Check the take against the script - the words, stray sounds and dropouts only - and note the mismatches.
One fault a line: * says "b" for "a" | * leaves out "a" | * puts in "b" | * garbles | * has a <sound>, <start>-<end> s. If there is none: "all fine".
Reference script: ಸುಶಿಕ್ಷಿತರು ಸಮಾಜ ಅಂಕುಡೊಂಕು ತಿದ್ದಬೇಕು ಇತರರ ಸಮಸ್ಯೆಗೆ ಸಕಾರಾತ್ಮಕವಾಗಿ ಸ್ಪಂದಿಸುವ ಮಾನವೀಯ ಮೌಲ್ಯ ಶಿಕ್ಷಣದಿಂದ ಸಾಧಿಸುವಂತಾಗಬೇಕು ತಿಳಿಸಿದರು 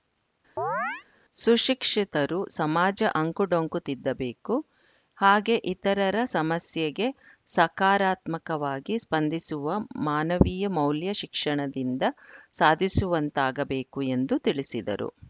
* has a chirp, 0.6-1.0 s
* puts in "ಹಾಗೆ"
* puts in "ಎಂದು"